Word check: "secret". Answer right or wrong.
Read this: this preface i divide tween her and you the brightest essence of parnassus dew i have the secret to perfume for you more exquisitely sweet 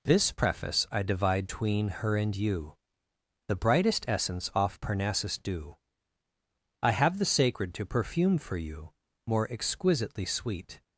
wrong